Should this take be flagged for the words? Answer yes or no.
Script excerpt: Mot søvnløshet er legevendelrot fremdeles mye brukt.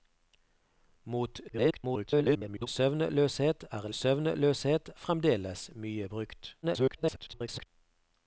yes